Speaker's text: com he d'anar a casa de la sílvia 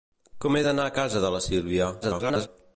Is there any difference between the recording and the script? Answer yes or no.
yes